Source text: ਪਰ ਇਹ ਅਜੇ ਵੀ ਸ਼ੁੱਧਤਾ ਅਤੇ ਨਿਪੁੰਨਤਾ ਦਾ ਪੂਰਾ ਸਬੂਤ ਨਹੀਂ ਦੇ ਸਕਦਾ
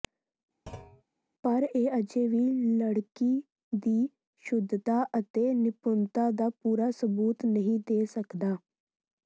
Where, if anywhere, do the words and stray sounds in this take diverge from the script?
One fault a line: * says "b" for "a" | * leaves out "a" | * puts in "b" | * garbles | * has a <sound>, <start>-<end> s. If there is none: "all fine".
* has a thud, 0.7-1.0 s
* puts in "ਲੜਕੀ ਦੀ"